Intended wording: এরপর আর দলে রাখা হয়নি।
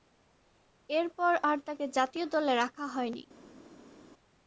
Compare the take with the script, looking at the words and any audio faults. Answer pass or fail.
fail